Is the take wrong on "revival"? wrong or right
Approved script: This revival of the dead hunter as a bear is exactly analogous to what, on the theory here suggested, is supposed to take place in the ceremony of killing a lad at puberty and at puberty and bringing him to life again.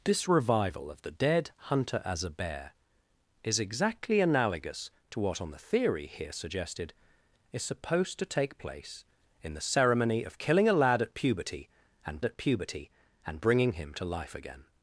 right